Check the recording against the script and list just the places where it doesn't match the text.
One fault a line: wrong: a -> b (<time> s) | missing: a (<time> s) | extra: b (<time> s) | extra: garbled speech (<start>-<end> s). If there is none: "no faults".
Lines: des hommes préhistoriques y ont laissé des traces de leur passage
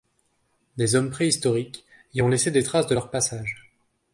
no faults